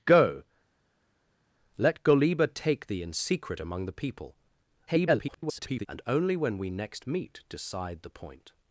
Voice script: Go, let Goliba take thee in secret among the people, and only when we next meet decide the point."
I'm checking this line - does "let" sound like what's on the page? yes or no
yes